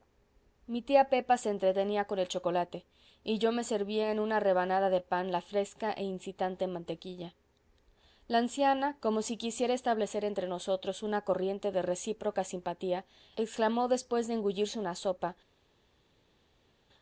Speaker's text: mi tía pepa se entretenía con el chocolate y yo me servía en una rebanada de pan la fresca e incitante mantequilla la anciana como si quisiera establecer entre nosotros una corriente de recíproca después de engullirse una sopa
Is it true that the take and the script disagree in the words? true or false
true